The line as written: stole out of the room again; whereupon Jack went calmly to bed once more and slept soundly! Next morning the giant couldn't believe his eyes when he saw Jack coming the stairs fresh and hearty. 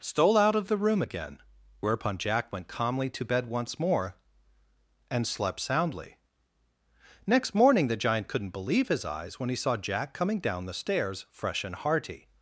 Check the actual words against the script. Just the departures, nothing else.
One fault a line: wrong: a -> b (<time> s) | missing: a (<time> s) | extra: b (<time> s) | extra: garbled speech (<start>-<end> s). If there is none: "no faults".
extra: down (10.4 s)